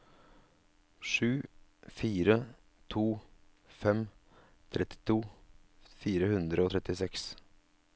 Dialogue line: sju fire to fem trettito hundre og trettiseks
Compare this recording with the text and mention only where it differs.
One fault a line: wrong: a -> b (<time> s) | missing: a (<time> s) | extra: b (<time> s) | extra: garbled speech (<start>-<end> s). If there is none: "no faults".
extra: fire (6.0 s)